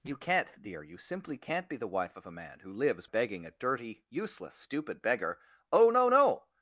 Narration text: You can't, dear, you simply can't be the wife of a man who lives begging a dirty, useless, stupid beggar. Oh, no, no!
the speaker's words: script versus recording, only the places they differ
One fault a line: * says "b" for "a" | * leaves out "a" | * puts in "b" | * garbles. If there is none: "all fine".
all fine